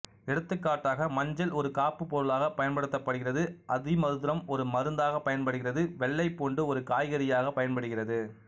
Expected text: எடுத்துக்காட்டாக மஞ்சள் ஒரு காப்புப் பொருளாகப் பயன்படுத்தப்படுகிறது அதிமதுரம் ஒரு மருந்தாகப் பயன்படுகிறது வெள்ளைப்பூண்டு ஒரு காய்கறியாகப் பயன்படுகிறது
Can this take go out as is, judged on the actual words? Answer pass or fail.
pass